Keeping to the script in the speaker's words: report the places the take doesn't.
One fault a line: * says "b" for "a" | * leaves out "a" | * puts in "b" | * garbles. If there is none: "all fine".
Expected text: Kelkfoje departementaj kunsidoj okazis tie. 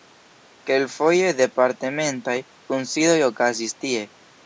all fine